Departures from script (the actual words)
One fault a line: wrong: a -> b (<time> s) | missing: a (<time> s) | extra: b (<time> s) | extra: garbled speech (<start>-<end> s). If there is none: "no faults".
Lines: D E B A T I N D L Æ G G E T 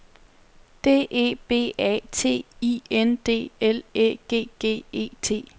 no faults